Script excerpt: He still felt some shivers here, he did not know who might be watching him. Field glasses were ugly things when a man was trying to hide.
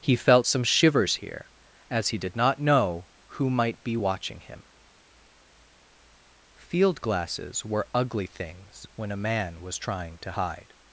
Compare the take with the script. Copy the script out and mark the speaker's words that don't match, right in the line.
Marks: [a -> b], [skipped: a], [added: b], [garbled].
He [skipped: still] felt some shivers here, [added: as] he did not know who might be watching him. Field glasses were ugly things when a man was trying to hide.